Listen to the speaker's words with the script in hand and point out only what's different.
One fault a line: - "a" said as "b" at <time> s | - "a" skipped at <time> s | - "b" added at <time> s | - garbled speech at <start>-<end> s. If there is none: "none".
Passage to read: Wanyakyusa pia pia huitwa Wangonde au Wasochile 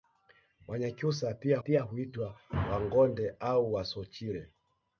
none